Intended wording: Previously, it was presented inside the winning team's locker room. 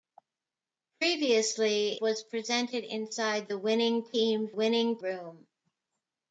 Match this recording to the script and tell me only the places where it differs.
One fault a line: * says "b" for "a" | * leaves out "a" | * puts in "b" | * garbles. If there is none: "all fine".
* leaves out "it"
* says "winning" for "locker"